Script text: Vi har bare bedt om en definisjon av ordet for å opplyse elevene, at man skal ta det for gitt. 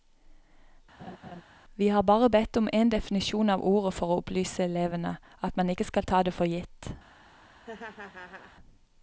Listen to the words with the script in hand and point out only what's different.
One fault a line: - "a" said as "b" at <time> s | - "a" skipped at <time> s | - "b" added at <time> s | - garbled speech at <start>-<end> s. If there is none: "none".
- "ikke" added at 5.7 s